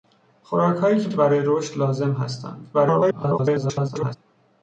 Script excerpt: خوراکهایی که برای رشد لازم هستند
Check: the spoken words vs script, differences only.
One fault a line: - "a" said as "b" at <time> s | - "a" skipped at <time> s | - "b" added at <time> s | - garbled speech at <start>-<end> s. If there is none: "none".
- "که" added at 1.1 s
- garbled speech at 2.7-4.2 s